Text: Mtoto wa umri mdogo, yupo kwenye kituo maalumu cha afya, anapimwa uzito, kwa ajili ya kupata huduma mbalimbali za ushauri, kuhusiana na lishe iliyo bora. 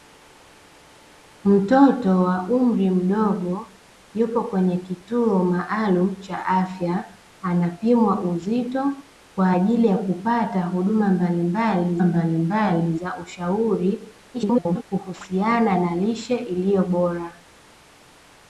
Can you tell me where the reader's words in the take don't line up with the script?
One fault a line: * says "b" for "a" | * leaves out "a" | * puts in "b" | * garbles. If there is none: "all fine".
* puts in "mbalimbali"
* garbles